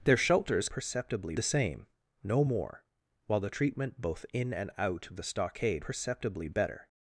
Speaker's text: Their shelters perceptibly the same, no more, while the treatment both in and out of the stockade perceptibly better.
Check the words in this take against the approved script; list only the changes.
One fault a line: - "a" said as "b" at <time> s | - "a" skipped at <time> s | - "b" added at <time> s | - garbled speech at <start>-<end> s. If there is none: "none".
none